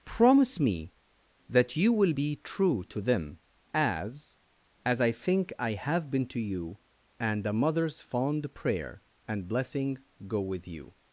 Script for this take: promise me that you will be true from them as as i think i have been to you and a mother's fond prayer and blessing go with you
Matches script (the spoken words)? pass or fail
fail